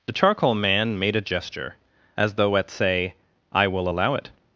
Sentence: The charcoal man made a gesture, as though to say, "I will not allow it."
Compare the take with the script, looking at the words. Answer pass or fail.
fail